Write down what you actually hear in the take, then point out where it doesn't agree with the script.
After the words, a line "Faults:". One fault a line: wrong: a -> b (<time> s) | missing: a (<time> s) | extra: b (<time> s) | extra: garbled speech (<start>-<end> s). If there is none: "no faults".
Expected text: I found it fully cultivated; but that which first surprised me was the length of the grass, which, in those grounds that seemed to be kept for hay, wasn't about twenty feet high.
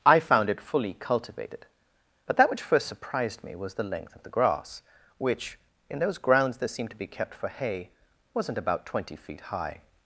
I found it fully cultivated; but that which first surprised me was the length of the grass, which, in those grounds that seemed to be kept for hay, wasn't about twenty feet high.
Faults:
no faults